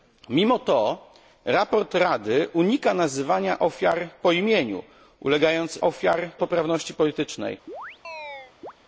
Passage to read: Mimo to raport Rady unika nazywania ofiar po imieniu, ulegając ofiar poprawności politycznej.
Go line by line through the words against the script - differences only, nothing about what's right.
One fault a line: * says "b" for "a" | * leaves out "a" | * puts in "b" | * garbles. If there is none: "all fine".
all fine